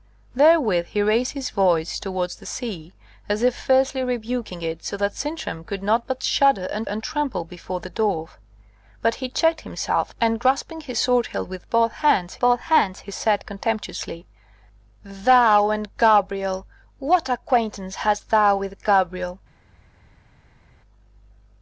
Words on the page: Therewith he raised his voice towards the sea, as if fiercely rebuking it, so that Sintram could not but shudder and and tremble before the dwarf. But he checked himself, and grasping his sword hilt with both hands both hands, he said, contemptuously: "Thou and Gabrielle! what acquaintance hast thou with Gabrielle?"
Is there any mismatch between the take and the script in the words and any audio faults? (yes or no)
no